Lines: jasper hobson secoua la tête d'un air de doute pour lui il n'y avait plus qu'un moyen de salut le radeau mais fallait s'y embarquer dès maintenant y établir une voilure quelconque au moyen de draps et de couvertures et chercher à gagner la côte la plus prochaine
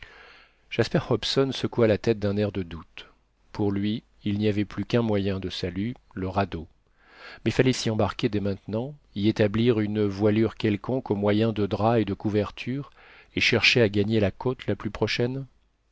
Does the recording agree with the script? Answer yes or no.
yes